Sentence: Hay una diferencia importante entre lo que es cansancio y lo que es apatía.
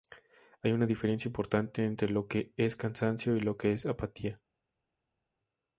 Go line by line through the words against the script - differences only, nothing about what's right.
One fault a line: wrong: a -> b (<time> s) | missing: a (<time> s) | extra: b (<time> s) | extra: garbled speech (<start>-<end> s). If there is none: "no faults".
no faults